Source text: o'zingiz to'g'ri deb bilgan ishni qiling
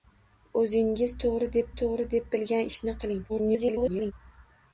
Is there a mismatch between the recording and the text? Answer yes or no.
yes